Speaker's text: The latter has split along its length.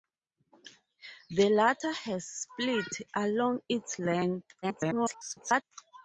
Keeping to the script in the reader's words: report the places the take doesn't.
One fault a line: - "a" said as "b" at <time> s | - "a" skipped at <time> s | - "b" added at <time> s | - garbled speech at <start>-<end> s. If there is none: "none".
- garbled speech at 4.6-5.6 s